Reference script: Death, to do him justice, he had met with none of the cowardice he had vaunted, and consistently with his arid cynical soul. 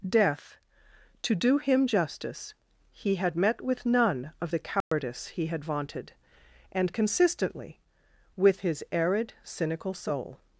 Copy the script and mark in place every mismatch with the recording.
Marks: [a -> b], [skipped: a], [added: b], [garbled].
Death, to do him justice, he had met with none of the cowardice he had vaunted, and consistently with his arid cynical soul.